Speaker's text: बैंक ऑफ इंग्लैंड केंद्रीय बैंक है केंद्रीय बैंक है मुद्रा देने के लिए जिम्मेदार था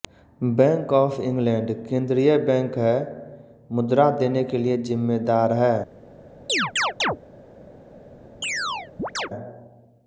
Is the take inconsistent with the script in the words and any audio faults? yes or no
yes